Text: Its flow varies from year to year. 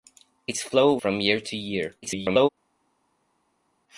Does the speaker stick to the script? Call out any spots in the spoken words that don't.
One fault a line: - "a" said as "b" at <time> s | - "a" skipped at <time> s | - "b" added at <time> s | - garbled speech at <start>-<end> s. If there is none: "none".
- "varies" skipped at 1.0 s
- garbled speech at 2.0-2.5 s